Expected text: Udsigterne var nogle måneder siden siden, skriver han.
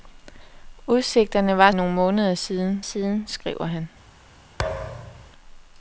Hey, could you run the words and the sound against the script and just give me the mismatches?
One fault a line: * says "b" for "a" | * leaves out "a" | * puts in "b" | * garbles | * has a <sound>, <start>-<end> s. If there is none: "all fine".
* has a thud, 4.6-5.3 s